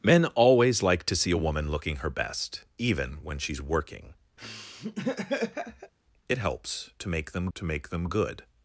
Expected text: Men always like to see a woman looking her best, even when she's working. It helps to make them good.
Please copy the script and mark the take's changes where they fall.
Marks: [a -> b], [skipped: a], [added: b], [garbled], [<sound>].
Men always like to see a woman looking her best, even when she's working. [laugh] It helps to make them [added: to make them] good.